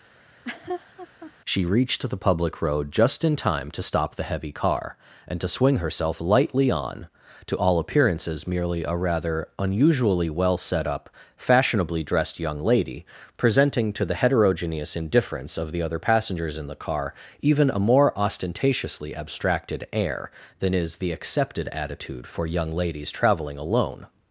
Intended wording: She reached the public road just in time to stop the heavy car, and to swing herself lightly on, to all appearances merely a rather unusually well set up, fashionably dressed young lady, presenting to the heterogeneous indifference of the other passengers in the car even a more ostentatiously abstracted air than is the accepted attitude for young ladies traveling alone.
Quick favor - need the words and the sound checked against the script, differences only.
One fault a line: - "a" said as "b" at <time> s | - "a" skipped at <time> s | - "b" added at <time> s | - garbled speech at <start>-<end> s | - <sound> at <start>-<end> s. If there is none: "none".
- laugh at 0.2-1.3 s